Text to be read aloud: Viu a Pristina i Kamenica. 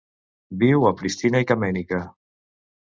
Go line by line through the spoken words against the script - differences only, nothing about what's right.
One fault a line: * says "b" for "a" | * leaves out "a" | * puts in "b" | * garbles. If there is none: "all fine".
all fine